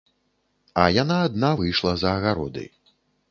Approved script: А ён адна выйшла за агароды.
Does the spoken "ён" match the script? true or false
false